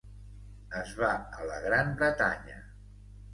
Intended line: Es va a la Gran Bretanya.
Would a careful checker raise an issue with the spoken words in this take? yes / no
no